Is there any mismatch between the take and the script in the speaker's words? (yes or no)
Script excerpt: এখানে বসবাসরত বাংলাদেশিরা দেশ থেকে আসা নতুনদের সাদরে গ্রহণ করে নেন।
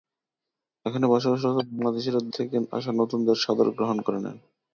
yes